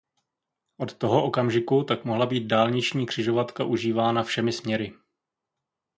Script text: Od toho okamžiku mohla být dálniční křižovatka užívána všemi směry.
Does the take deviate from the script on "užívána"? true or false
false